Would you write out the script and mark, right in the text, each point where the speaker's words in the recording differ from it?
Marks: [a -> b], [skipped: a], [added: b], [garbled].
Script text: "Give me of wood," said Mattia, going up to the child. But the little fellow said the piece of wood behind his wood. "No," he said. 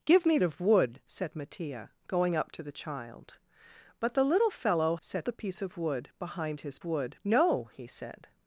"Give me of wood," said Mattia, going up to the child. But the little fellow said the piece of wood behind his wood. "No," he said.